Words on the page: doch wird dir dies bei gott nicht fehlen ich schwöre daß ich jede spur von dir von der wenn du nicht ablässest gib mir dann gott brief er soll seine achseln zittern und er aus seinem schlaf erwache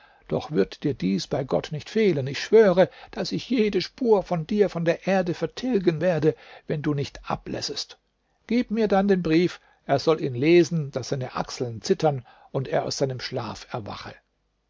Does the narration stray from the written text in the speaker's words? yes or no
yes